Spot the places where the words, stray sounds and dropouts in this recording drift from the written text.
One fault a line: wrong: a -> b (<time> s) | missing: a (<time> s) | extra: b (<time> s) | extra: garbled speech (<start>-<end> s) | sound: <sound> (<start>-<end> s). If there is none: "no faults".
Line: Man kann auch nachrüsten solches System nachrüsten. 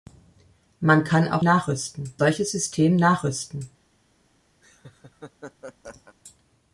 sound: laugh (4.6-6.2 s)